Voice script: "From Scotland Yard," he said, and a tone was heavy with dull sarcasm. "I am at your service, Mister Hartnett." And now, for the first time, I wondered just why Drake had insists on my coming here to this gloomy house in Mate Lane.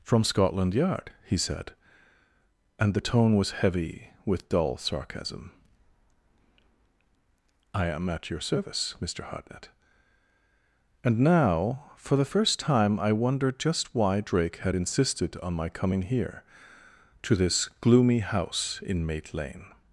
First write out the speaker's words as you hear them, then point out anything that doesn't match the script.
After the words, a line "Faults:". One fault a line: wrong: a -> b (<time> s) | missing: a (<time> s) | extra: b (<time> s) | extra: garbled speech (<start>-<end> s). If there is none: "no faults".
"From Scotland Yard," he said, and the tone was heavy with dull sarcasm. "I am at your service, Mister Hartnett." And now, for the first time, I wondered just why Drake had insisted on my coming here to this gloomy house in Mate Lane.
Faults:
wrong: a -> the (2.9 s)
wrong: insists -> insisted (14.7 s)